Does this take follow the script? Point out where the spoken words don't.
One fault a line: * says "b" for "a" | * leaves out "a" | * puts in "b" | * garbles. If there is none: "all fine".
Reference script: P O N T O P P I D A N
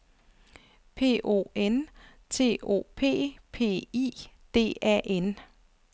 all fine